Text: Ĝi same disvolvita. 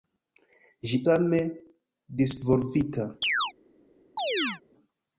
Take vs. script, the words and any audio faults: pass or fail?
fail